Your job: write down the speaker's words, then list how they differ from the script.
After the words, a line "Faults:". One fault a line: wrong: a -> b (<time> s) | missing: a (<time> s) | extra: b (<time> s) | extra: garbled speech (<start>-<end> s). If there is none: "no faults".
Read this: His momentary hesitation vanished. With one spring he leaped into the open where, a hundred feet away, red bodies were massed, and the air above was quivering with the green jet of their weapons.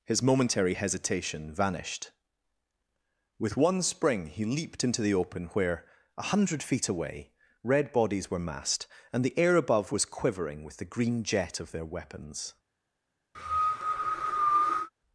His momentary hesitation vanished. With one spring he leaped into the open where, a hundred feet away, red bodies were massed, and the air above was quivering with the green jet of their weapons.
Faults:
no faults